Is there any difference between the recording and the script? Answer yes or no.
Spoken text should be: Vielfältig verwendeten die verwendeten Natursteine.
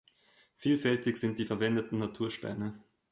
yes